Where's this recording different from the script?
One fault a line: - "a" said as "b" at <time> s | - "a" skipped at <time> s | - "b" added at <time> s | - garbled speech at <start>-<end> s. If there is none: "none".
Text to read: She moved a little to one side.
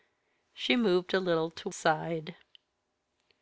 - "one" skipped at 1.7 s